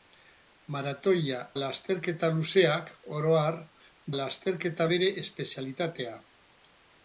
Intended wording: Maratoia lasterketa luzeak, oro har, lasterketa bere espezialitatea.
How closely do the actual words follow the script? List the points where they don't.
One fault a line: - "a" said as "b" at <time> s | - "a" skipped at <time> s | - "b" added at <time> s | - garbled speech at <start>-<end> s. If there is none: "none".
none